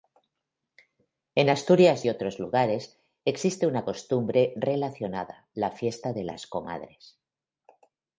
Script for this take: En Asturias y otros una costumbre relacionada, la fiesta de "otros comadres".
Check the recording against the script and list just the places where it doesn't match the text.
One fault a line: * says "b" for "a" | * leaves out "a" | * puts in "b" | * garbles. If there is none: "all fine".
* puts in "lugares existe"
* says "las" for "otros"